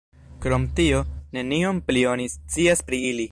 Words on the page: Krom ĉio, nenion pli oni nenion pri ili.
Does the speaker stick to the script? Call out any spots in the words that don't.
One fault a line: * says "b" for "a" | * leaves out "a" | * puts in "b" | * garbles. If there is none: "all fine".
* says "tio" for "ĉio"
* says "scias" for "nenion"